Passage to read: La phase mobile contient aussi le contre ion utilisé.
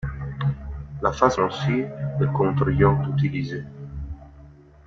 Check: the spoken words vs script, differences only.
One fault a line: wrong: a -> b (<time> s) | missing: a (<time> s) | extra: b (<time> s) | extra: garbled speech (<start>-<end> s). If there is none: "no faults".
missing: mobile contient (1.4 s)